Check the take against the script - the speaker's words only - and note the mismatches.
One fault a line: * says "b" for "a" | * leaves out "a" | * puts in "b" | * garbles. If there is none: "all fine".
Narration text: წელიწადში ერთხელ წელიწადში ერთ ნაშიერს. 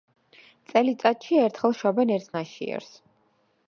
* says "შობენ" for "წელიწადში"